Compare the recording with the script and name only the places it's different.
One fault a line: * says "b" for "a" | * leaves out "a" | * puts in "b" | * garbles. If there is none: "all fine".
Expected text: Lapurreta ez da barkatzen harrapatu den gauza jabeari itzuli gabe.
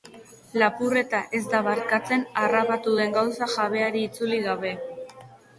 all fine